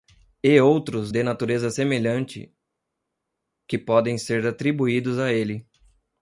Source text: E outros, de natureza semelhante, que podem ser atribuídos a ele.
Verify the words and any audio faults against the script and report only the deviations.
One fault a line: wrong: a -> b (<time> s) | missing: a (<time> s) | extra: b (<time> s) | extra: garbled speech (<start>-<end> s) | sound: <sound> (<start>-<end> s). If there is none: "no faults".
no faults